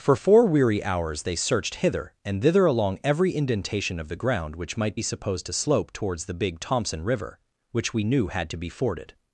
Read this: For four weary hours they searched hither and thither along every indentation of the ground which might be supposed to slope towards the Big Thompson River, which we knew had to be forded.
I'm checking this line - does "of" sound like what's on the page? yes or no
yes